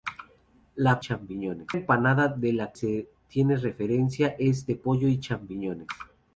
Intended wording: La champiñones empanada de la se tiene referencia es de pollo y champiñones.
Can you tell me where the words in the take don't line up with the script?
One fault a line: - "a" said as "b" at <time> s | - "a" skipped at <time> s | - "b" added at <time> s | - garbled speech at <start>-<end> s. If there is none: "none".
none